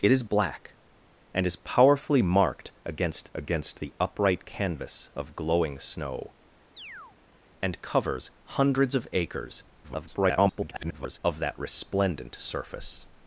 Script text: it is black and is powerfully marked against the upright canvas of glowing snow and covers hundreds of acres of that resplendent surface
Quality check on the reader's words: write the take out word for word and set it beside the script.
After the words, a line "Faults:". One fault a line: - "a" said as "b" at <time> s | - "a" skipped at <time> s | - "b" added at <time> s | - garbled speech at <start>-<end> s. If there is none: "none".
it is black and is powerfully marked against against the upright canvas of glowing snow and covers hundreds of acres [garbled] of that resplendent surface
Faults:
- "against" added at 3.3 s
- garbled speech at 9.8-11.2 s